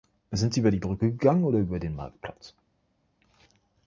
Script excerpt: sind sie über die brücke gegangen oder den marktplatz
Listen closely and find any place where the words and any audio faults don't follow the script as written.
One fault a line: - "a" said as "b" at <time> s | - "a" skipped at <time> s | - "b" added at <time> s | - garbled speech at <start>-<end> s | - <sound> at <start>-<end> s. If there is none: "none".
- "über" added at 1.6 s